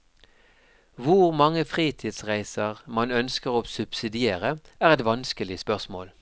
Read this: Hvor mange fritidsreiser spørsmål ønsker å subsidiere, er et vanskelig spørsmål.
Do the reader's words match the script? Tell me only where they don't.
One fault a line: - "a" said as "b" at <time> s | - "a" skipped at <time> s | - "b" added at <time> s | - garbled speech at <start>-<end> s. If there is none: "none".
- "spørsmål" said as "man" at 2.9 s